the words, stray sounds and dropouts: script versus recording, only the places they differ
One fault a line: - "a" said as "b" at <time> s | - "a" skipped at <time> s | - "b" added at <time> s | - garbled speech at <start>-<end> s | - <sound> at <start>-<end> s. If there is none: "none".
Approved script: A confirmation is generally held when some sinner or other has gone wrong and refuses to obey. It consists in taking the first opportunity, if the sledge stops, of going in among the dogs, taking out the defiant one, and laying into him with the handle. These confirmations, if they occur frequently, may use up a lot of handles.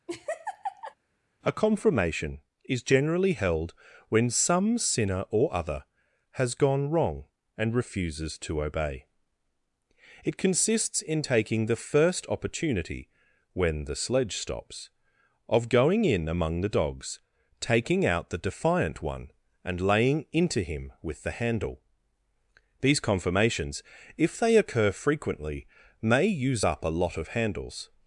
- laugh at 0.1-0.9 s
- "if" said as "when" at 13.5 s